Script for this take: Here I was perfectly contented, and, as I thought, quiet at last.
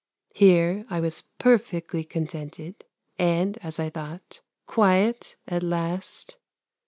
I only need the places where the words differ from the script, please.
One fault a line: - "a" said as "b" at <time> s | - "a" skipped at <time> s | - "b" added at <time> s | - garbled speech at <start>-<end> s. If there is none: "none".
none